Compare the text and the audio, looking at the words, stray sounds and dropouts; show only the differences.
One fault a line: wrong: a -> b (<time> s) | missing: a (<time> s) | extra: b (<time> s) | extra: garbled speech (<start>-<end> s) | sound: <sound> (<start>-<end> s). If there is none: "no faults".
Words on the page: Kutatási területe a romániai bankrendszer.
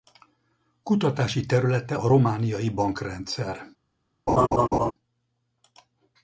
sound: laugh (4.3-4.9 s)